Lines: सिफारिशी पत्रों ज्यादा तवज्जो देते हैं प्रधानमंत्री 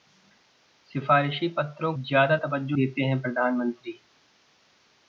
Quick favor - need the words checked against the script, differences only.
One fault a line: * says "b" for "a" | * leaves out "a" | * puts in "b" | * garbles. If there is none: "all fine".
all fine